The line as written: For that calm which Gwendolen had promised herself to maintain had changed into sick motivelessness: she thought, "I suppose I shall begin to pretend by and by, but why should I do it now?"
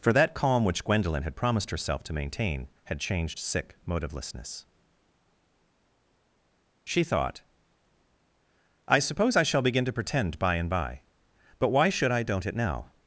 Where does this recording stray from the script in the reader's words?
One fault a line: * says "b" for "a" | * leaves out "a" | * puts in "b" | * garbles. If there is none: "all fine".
* leaves out "into"
* says "don't" for "do"